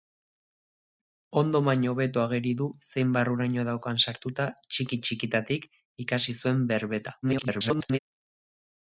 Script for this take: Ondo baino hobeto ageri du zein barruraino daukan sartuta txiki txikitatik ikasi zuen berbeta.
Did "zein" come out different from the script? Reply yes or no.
no